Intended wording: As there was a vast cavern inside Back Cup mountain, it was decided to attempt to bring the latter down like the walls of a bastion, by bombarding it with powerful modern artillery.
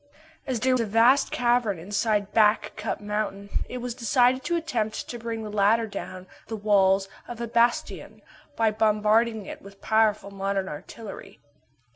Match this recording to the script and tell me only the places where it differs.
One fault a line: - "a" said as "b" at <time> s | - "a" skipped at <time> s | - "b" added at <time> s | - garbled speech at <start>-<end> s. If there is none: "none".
- "was" skipped at 0.8 s
- "like" skipped at 6.3 s